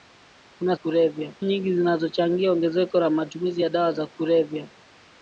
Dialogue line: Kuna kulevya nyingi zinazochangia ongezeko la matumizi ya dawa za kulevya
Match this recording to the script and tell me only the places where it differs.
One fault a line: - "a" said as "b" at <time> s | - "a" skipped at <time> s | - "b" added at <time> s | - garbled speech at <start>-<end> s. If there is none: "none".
none